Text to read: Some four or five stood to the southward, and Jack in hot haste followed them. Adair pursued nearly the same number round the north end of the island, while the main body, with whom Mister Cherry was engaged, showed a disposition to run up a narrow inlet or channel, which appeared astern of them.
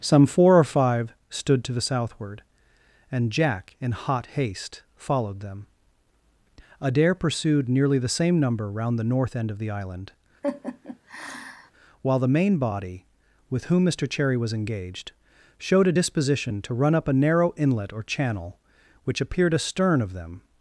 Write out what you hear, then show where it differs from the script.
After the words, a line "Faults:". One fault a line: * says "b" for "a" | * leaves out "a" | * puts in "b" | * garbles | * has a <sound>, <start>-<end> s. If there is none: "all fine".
Some four or five stood to the southward, and Jack in hot haste followed them. Adair pursued nearly the same number round the north end of the island, while the main body, with whom Mister Cherry was engaged, showed a disposition to run up a narrow inlet or channel, which appeared astern of them.
Faults:
* has a laugh, 10.4-11.7 s